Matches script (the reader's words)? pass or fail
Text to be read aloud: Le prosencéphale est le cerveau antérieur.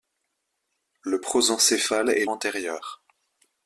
fail